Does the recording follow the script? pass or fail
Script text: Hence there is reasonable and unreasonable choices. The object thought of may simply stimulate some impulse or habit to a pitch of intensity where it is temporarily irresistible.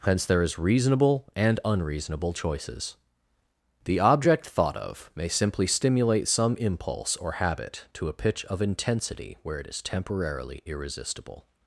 pass